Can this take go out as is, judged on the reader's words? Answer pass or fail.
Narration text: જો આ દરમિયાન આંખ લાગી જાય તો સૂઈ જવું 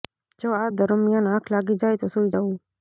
pass